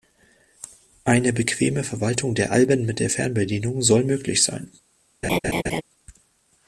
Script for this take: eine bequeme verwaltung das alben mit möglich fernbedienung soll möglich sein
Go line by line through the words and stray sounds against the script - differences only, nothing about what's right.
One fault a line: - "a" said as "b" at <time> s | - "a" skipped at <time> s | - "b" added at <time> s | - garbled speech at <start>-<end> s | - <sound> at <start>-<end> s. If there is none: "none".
- "das" said as "der" at 2.3 s
- "möglich" said as "der" at 3.0 s
- laugh at 5.2-5.8 s